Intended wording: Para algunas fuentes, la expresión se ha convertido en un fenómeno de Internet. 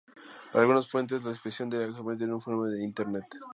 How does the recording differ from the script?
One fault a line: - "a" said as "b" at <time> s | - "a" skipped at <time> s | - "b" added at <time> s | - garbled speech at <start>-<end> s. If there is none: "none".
none